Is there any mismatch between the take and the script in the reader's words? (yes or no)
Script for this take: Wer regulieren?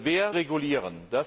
no